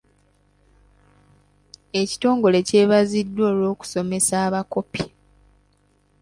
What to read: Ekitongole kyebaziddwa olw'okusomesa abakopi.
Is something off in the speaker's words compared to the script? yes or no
no